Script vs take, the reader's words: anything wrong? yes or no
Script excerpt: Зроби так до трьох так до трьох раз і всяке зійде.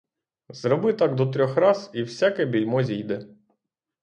yes